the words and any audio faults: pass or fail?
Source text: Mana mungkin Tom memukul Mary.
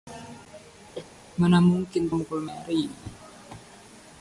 fail